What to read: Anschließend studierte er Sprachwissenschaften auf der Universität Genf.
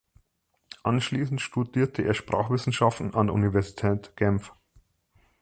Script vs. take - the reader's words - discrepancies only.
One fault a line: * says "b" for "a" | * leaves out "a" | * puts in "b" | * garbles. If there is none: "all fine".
* says "an" for "auf"